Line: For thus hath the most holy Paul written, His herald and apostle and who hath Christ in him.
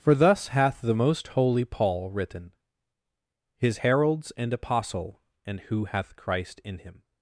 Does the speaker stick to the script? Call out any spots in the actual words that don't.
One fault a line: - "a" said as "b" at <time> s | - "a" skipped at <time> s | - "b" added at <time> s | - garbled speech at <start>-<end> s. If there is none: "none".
- "herald" said as "heralds" at 3.8 s